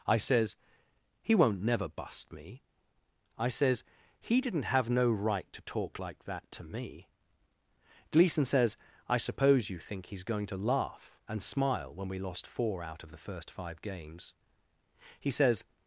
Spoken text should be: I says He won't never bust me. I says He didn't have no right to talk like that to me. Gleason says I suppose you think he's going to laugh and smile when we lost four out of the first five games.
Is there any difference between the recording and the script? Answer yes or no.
yes